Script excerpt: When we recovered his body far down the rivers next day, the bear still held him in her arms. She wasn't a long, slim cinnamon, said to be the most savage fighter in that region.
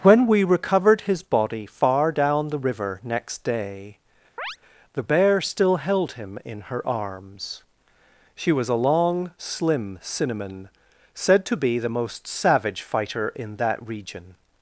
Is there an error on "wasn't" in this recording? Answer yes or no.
yes